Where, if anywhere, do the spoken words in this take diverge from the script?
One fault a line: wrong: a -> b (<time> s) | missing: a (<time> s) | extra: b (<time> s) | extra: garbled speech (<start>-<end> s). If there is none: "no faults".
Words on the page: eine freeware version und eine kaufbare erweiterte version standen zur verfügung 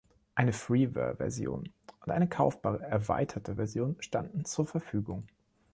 no faults